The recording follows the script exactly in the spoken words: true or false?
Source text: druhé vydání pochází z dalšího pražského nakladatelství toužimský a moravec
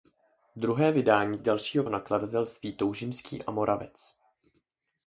false